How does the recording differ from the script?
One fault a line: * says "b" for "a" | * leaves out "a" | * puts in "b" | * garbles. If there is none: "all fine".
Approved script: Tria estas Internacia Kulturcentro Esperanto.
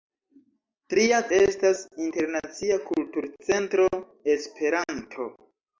all fine